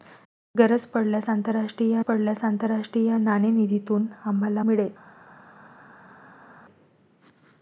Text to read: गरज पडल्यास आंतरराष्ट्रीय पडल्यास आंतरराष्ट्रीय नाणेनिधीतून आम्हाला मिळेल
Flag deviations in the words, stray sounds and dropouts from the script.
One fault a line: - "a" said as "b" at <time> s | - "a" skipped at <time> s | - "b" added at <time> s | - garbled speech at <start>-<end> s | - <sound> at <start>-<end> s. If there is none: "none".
none